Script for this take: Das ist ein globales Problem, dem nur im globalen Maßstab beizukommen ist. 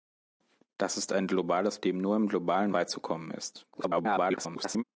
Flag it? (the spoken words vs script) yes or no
yes